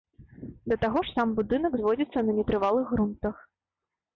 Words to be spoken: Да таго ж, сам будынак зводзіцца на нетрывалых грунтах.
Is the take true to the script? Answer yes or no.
yes